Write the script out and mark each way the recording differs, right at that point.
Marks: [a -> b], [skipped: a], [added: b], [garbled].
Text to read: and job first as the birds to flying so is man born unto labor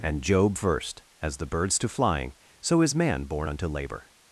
and job first as the birds to flying so is man born unto labor